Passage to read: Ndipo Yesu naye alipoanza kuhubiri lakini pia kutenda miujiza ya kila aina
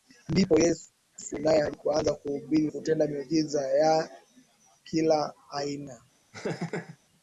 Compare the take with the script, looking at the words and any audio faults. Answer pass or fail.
fail